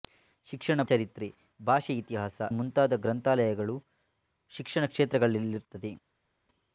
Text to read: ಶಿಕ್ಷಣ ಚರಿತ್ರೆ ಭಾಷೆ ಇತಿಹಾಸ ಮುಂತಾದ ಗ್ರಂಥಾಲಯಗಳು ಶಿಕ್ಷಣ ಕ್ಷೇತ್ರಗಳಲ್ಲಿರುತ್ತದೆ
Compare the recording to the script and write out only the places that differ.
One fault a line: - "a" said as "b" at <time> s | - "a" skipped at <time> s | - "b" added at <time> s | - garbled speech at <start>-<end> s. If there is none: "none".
none